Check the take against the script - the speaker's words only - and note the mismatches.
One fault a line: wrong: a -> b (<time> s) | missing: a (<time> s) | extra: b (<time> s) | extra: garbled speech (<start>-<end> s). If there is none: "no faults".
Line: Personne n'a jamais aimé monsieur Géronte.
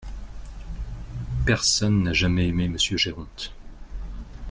no faults